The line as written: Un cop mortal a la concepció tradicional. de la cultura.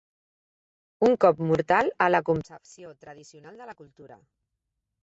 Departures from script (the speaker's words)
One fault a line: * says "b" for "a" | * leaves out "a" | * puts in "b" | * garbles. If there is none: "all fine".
all fine